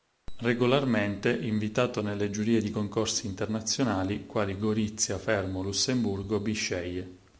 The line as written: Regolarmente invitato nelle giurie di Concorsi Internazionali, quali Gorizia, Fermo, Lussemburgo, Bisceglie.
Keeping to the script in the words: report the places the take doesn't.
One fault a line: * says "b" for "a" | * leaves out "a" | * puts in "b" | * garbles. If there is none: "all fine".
all fine